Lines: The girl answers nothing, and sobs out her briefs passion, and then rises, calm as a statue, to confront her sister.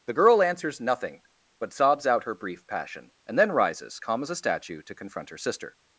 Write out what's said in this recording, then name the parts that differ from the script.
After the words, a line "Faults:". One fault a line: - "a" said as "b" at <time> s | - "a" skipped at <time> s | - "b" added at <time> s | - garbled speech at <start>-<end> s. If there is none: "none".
The girl answers nothing, but sobs out her brief passion, and then rises, calm as a statue, to confront her sister.
Faults:
- "and" said as "but" at 1.6 s
- "briefs" said as "brief" at 2.3 s